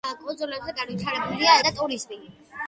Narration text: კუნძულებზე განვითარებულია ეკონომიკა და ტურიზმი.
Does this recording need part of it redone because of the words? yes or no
yes